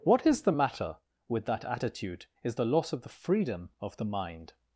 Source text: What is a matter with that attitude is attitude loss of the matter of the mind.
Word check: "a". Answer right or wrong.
wrong